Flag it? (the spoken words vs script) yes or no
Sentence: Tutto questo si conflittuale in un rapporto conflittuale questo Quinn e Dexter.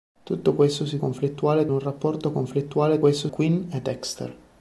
no